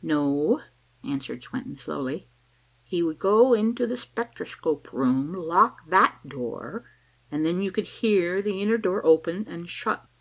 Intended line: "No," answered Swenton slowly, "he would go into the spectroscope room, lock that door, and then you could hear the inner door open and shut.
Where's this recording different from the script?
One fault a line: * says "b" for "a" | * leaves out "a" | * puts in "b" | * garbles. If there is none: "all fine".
all fine